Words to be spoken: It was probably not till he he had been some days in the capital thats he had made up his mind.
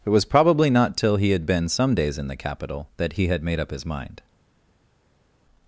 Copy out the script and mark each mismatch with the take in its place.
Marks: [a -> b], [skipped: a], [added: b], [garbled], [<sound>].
It was probably not till he [skipped: he] had been some days in the capital [thats -> that] he had made up his mind.